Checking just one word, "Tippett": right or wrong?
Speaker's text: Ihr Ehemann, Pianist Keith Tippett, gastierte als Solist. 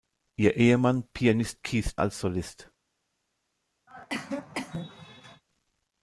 wrong